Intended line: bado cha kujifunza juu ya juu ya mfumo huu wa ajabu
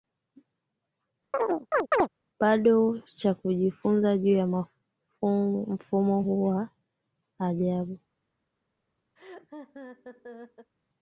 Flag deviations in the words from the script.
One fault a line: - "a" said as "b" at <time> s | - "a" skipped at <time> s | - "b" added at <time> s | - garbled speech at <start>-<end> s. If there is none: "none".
- "juu ya" skipped at 4.5 s